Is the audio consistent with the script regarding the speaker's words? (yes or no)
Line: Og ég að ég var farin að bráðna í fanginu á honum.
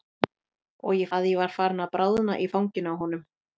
yes